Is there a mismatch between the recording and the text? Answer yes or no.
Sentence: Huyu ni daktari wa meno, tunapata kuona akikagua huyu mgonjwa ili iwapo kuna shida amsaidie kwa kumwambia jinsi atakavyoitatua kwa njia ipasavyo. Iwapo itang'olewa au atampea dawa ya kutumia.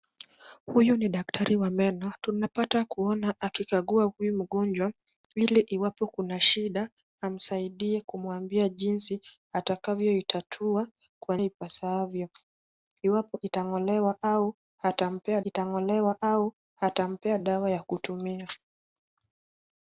yes